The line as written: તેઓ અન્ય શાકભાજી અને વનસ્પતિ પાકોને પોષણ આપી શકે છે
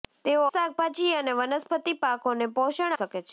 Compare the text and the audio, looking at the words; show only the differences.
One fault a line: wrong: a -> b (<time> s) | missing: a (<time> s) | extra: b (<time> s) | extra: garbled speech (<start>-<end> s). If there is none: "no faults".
missing: અન્ય (0.5 s)
missing: આપી (3.0 s)